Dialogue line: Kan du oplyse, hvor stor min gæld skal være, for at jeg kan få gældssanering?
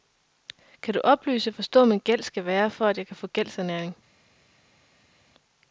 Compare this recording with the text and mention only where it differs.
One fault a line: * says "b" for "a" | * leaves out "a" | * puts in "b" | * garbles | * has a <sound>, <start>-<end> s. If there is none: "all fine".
all fine